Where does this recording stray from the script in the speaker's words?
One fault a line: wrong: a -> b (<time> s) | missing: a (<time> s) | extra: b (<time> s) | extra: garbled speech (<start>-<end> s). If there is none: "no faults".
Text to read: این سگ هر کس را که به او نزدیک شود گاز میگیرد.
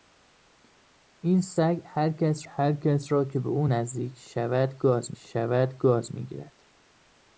extra: هر کس (2.5 s)
extra: شود گاز (5.2 s)